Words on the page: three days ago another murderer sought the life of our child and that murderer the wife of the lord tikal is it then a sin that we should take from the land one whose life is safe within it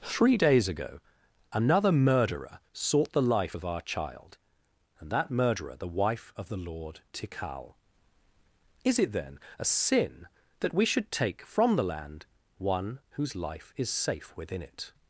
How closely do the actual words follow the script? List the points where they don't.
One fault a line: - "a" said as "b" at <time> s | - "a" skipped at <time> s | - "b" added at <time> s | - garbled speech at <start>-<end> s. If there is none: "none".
none